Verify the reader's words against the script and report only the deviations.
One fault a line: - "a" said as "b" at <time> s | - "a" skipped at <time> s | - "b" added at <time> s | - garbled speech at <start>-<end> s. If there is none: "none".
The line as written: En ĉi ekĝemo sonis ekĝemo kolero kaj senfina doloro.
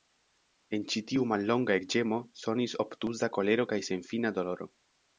- "tiu mallonga" added at 1.1 s
- "ekĝemo" said as "obtuza" at 2.9 s